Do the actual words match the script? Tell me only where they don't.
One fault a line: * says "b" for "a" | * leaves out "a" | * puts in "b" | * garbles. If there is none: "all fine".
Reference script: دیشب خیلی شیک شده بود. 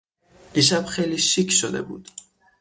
all fine